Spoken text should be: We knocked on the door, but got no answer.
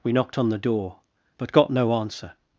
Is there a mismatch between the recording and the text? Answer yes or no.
no